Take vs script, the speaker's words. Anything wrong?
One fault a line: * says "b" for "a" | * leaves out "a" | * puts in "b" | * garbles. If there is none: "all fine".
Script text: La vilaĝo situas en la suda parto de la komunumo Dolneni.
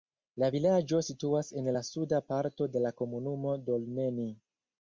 all fine